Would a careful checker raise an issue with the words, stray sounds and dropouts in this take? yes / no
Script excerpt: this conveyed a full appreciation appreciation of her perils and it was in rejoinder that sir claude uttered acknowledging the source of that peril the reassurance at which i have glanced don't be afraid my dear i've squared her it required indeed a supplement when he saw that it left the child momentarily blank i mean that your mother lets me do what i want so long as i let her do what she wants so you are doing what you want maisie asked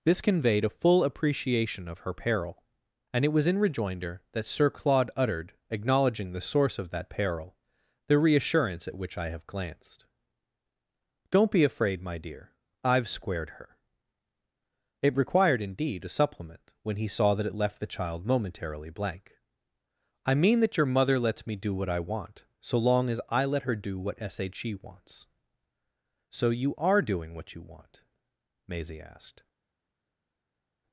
yes